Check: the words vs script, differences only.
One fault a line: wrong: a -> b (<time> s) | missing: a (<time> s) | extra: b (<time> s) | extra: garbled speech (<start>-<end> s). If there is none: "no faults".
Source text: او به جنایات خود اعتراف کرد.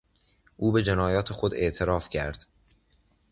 no faults